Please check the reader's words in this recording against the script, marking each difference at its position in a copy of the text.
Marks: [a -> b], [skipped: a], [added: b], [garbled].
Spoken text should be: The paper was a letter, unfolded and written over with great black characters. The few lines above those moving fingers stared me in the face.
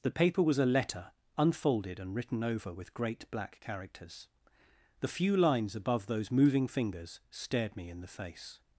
The paper was a letter, unfolded and written over with great black characters. The few lines above those moving fingers stared me in the face.